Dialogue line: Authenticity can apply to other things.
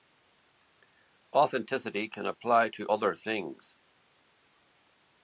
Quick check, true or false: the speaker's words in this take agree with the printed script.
true